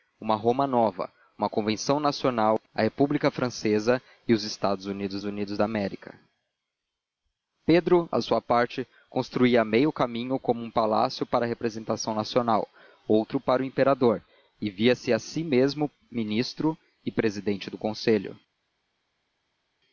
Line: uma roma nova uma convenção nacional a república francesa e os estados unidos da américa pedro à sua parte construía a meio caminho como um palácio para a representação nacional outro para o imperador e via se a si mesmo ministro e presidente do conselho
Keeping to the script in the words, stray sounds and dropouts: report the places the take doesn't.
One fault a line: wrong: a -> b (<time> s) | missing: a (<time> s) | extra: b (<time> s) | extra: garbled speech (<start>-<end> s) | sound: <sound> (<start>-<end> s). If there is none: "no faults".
extra: unidos (5.2 s)